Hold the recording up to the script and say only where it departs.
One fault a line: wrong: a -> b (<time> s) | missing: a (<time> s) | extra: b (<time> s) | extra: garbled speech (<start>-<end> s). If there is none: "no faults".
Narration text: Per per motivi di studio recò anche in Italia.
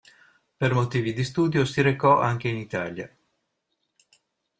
missing: per (0.7 s)
extra: si (1.6 s)